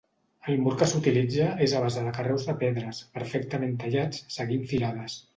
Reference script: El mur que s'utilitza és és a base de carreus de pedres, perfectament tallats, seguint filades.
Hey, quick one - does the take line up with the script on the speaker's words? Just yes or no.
no